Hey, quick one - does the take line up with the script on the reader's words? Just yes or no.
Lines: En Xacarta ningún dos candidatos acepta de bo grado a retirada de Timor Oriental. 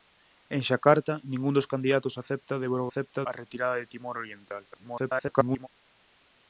no